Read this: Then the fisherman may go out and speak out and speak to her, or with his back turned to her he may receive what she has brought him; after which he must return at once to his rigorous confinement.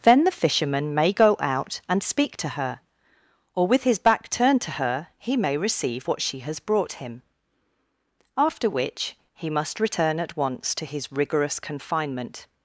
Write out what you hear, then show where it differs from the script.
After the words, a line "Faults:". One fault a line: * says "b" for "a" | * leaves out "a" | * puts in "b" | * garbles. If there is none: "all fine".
Then the fisherman may go out and speak to her, or with his back turned to her he may receive what she has brought him; after which he must return at once to his rigorous confinement.
Faults:
* leaves out "out and speak"